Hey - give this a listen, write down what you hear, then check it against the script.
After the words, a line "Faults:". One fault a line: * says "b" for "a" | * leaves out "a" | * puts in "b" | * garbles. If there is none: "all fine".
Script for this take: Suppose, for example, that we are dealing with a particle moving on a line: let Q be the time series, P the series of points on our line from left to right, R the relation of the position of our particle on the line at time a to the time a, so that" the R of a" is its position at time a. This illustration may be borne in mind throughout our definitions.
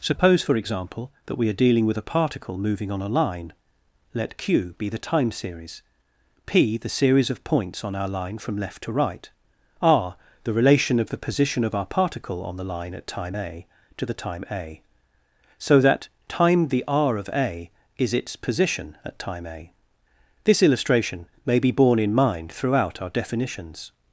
Suppose, for example, that we are dealing with a particle moving on a line: let Q be the time series, P the series of points on our line from left to right, R the relation of the position of our particle on the line at time a to the time a, so that" time the R of a" is its position at time a. This illustration may be borne in mind throughout our definitions.
Faults:
* puts in "time"